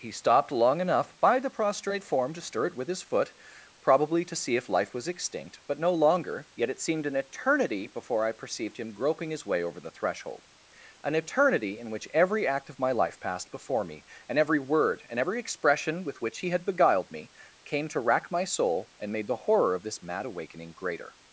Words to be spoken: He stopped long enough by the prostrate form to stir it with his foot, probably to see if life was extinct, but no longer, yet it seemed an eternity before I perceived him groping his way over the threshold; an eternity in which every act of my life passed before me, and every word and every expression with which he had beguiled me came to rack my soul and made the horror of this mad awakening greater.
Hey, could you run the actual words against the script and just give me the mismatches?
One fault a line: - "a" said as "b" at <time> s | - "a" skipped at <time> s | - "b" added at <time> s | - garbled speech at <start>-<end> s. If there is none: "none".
none